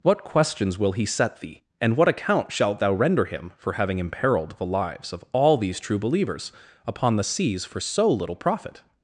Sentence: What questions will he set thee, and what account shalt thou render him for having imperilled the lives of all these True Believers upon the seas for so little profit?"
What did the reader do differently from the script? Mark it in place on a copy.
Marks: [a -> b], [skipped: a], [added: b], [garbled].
What questions will he set thee, and what account shalt thou render him for having imperilled the lives of all these True Believers upon the seas for so little profit?"